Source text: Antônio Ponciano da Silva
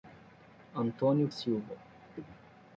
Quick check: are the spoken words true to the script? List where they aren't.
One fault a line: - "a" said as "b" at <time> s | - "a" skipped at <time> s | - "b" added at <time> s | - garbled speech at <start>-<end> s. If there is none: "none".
- "Ponciano da" skipped at 1.3 s